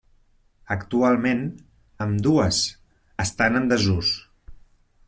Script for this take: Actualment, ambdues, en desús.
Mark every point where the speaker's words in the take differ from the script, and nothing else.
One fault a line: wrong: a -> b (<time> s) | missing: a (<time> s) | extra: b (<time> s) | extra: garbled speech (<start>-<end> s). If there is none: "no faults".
extra: estan (3.3 s)